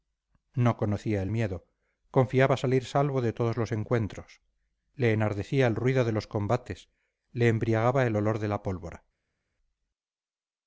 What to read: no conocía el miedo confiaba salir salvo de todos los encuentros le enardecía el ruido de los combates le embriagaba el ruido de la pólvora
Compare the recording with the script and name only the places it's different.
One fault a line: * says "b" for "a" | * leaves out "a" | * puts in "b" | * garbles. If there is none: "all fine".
* says "olor" for "ruido"